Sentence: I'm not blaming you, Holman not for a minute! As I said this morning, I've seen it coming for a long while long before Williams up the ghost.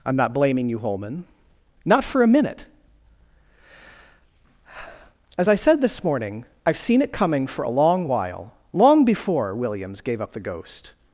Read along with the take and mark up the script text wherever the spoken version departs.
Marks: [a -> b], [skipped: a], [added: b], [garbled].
I'm not blaming you, Holman not for a minute! As I said this morning, I've seen it coming for a long while long before Williams [added: gave] up the ghost.